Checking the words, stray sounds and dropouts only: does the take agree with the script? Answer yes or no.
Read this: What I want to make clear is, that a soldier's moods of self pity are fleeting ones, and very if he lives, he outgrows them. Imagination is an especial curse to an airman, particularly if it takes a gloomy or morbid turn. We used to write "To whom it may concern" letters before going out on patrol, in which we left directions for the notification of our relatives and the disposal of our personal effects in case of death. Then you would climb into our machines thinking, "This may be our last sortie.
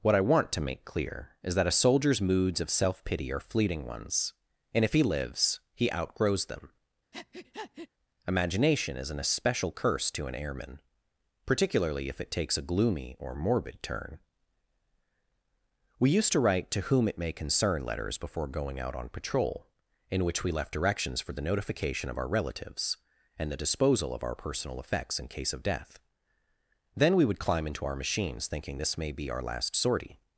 no